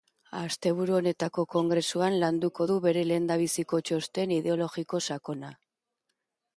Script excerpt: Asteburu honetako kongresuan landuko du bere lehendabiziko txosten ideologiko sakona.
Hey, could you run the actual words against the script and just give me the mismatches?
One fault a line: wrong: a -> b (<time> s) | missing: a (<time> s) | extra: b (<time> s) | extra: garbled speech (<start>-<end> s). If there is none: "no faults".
no faults